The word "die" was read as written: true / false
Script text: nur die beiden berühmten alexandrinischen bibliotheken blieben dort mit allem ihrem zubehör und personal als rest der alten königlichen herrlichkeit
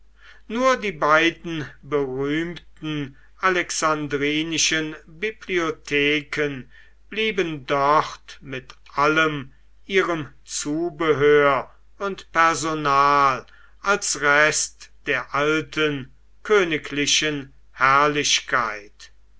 true